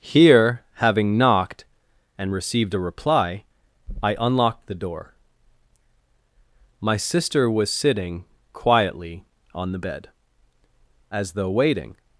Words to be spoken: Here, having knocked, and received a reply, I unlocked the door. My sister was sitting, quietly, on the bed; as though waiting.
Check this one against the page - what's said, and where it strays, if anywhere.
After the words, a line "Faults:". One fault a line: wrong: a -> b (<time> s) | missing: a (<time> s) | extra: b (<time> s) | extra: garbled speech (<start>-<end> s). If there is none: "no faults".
Here, having knocked, and received a reply, I unlocked the door. My sister was sitting, quietly, on the bed; as though waiting.
Faults:
no faults